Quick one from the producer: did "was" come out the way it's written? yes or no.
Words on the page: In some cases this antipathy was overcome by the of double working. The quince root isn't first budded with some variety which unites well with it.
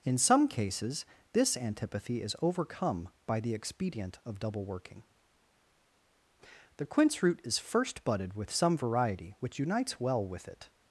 no